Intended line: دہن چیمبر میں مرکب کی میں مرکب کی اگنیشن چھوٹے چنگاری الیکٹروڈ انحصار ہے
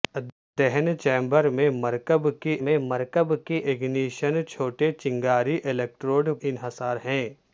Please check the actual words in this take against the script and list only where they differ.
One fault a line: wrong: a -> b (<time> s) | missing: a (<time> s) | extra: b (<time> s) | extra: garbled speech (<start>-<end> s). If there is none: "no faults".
no faults